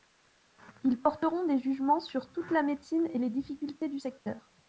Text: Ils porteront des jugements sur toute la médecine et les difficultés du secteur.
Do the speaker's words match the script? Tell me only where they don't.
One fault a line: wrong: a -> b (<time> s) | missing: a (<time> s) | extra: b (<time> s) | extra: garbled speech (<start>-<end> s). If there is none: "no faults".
no faults